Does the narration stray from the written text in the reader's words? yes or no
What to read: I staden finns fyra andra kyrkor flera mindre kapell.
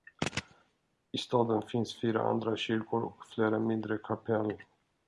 yes